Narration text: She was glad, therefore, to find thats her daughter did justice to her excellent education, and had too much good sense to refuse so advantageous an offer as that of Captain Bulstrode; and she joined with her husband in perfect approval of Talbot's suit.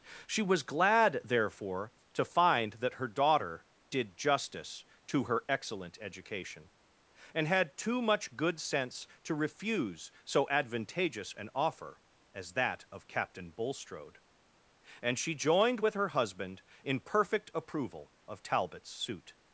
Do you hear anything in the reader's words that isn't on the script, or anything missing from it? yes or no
yes